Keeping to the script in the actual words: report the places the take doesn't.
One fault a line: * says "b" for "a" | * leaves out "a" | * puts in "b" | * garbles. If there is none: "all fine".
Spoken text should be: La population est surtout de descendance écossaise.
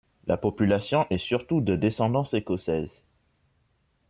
all fine